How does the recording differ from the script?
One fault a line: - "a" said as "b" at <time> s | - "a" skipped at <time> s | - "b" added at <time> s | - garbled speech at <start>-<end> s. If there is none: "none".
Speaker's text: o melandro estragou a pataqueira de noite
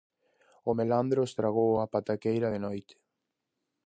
none